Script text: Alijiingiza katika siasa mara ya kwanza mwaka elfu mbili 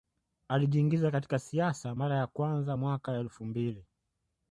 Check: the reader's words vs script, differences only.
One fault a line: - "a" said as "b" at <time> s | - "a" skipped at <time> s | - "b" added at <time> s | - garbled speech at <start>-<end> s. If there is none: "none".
none